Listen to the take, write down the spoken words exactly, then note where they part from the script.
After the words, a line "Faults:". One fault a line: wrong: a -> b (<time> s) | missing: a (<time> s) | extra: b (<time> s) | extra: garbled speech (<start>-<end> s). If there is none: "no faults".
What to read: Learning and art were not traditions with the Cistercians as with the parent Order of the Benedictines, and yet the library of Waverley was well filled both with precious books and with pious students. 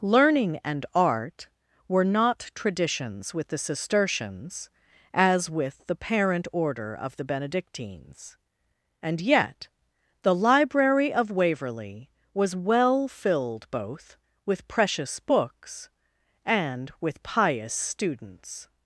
Learning and art were not traditions with the Cistercians as with the parent Order of the Benedictines, and yet the library of Waverley was well filled both with precious books and with pious students.
Faults:
no faults